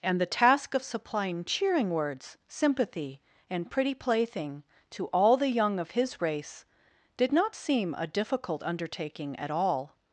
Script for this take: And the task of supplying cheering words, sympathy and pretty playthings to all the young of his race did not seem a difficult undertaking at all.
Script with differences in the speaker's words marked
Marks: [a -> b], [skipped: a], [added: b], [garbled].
And the task of supplying cheering words, sympathy and pretty [playthings -> plaything] to all the young of his race did not seem a difficult undertaking at all.